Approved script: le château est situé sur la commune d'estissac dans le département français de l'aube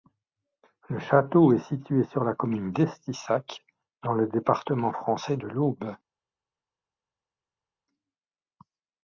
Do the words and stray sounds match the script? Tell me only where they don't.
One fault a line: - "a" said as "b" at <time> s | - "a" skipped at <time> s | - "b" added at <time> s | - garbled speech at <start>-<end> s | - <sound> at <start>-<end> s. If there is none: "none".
none